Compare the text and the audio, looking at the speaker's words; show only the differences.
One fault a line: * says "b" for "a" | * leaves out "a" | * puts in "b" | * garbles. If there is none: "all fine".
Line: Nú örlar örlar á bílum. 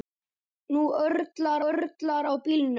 all fine